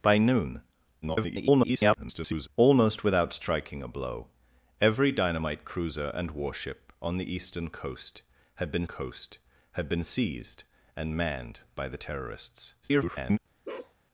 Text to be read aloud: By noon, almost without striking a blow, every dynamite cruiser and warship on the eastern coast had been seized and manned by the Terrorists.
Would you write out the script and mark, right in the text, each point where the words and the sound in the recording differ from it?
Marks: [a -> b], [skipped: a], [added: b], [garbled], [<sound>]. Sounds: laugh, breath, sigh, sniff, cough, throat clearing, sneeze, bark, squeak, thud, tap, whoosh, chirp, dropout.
By noon, [garbled] almost without striking a blow, every dynamite cruiser and warship on the eastern coast had been [added: coast had been] seized and manned by the Terrorists. [garbled] [bark]